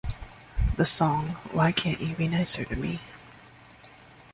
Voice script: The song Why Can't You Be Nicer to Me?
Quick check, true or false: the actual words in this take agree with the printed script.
true